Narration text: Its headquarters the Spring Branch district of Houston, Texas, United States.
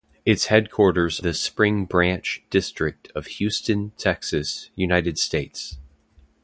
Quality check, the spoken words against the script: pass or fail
pass